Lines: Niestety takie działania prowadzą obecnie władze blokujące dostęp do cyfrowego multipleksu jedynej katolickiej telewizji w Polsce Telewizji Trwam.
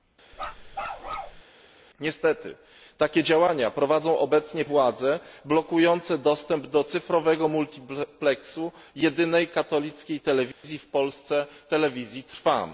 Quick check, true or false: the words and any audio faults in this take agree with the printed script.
false